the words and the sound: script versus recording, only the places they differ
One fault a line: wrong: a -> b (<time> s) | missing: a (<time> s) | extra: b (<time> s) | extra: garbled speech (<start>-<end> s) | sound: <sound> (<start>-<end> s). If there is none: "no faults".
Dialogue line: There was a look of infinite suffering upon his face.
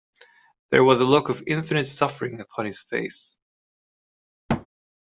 sound: thud (4.5-4.7 s)